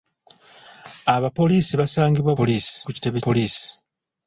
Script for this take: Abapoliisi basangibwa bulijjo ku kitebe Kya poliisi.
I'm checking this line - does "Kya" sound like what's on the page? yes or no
no